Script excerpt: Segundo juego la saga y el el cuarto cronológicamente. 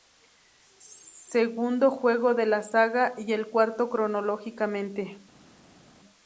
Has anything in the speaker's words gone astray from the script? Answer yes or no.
yes